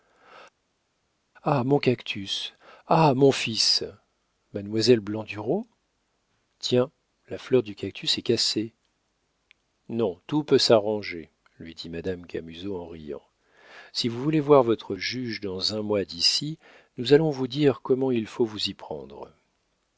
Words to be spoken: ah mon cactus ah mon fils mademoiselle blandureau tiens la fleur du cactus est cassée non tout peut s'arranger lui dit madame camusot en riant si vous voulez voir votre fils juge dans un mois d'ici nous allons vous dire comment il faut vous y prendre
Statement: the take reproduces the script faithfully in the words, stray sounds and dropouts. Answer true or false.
false